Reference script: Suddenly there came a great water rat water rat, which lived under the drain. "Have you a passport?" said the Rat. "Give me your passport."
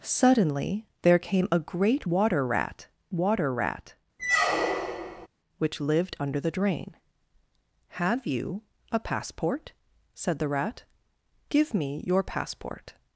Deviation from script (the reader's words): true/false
false